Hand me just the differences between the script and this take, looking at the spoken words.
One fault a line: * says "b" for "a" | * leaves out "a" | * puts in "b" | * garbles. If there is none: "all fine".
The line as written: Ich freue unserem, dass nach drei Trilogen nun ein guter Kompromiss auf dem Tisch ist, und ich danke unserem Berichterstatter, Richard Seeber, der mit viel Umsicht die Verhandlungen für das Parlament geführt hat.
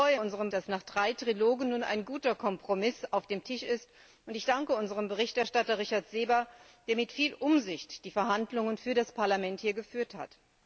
all fine